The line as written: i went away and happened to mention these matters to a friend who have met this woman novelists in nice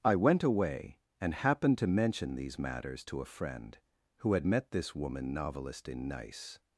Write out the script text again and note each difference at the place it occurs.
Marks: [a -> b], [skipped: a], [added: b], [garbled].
i went away and happened to mention these matters to a friend who [have -> had] met this woman [novelists -> novelist] in nice